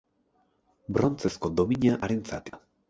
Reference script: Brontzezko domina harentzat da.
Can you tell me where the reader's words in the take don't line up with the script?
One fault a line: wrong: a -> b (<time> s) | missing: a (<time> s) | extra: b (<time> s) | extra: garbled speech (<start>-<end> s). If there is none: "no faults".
no faults